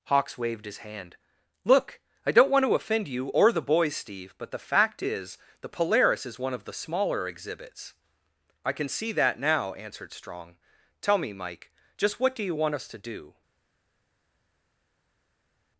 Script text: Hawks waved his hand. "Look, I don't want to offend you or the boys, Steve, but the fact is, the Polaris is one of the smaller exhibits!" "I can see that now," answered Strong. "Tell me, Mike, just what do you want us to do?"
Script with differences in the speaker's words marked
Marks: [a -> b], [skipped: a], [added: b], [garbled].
Hawks waved his hand. "Look, I don't want to offend you or the boys, Steve, but the fact is, the Polaris is one of the smaller exhibits!" "I can see that now," answered Strong. "Tell me, Mike, just what do you want us to do?"